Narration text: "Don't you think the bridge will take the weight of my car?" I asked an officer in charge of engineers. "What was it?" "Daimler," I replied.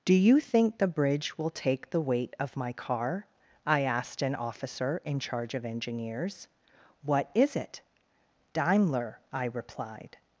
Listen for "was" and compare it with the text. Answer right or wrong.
wrong